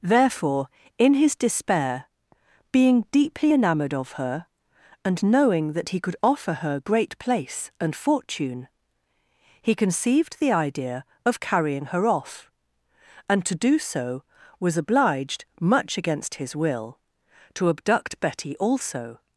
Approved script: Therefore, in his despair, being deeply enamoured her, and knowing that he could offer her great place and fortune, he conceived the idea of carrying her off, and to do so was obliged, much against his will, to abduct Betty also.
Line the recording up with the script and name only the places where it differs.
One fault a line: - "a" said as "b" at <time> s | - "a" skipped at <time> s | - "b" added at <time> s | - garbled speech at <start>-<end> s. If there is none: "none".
- "of" added at 3.9 s